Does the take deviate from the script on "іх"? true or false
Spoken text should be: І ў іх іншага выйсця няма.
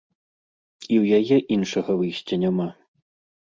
true